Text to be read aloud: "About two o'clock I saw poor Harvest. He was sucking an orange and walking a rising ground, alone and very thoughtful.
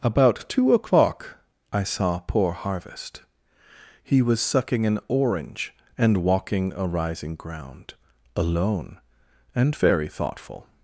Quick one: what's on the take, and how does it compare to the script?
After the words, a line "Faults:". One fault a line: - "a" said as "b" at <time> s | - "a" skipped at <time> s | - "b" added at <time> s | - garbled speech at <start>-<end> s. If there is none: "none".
"About two o'clock I saw poor Harvest. He was sucking an orange and walking a rising ground, alone and very thoughtful.
Faults:
none